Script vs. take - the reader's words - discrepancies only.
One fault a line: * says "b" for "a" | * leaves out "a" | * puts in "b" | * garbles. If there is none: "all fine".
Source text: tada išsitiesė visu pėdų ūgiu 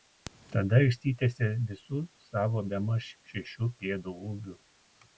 * puts in "savo bemaž šešių"